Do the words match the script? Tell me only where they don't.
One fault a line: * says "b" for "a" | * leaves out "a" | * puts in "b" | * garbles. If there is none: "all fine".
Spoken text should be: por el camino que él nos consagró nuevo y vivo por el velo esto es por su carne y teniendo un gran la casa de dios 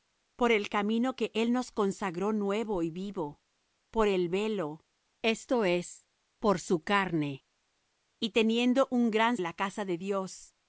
all fine